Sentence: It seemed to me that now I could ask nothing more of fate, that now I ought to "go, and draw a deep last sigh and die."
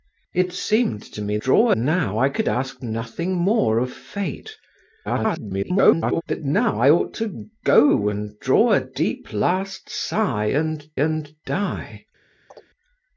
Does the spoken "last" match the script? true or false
true